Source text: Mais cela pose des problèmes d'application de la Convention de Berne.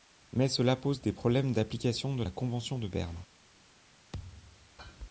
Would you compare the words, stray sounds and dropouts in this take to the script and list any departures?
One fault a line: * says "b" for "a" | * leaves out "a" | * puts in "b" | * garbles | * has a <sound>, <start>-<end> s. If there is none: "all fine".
* has a thud, 4.1-4.8 s